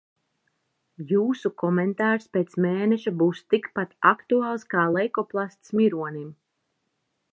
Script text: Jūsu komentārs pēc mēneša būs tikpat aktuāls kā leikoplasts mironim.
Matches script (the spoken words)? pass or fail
pass